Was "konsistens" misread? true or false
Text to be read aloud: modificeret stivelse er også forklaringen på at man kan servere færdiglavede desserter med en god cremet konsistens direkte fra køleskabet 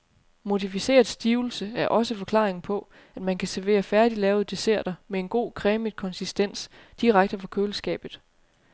false